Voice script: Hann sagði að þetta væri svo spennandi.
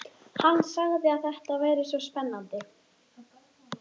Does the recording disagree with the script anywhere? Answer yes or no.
no